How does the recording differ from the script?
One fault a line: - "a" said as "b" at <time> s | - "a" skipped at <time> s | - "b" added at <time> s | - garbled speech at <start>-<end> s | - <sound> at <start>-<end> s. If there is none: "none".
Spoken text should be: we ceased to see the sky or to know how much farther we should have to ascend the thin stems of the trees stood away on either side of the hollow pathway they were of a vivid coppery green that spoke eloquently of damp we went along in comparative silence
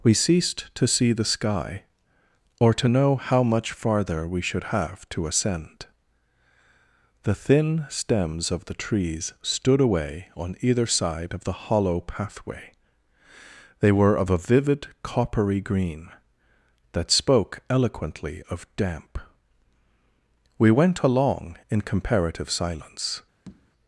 - tap at 23.5-23.7 s